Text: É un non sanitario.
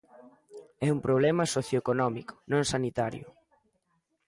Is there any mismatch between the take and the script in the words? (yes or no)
yes